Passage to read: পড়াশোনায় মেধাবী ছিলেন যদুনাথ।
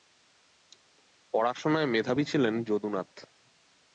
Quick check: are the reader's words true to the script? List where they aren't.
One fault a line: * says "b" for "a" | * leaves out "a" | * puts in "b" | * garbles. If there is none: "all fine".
all fine